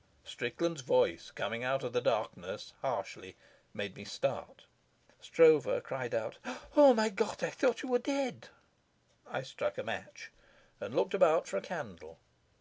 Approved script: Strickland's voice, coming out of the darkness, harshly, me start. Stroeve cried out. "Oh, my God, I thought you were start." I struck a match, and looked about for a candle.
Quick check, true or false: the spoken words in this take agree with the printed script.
false